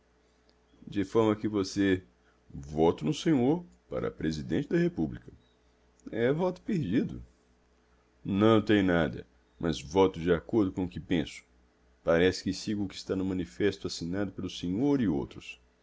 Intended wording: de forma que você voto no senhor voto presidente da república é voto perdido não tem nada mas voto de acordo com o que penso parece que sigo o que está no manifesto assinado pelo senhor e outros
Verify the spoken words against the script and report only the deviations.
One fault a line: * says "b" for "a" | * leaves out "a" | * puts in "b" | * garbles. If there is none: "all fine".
* says "para" for "voto"